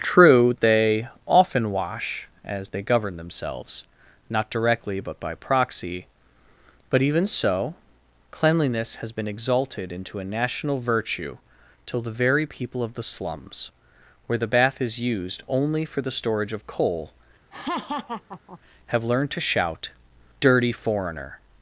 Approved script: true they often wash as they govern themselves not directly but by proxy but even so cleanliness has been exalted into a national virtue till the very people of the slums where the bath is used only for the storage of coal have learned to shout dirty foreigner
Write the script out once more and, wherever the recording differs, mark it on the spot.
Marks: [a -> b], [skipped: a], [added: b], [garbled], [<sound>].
true they often wash as they govern themselves not directly but by proxy but even so cleanliness has been exalted into a national virtue till the very people of the slums where the bath is used only for the storage of coal [laugh] have learned to shout dirty foreigner